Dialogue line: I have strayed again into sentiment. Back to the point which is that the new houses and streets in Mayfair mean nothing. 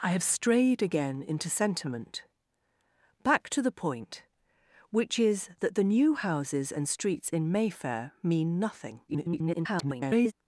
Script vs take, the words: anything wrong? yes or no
yes